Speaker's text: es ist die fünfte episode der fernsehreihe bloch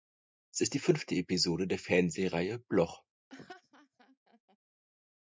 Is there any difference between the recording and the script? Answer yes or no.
no